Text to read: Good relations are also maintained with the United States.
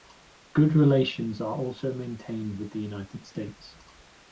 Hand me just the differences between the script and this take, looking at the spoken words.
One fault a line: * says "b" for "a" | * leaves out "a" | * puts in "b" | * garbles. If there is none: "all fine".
all fine